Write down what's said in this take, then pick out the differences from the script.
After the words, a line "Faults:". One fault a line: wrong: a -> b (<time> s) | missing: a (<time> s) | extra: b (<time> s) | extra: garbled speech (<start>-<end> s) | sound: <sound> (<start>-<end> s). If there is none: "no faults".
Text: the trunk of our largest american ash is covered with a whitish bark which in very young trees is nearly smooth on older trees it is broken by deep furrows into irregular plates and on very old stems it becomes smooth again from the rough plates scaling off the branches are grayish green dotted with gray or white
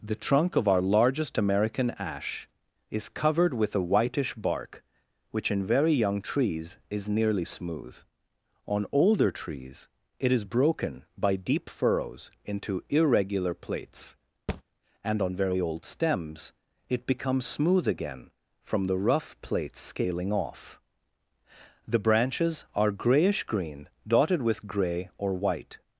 the trunk of our largest american ash is covered with a whitish bark which in very young trees is nearly smooth on older trees it is broken by deep furrows into irregular plates and on very old stems it becomes smooth again from the rough plates scaling off the branches are grayish green dotted with gray or white
Faults:
sound: thud (14.5-14.6 s)